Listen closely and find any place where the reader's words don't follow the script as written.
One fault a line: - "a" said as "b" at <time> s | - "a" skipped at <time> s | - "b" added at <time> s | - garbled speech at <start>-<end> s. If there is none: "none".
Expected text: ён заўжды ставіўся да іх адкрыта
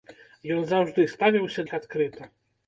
- "да" skipped at 1.6 s